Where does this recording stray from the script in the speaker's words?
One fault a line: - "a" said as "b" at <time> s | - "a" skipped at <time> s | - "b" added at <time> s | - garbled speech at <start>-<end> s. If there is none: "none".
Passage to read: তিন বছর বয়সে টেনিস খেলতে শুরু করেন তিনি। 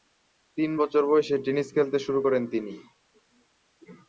none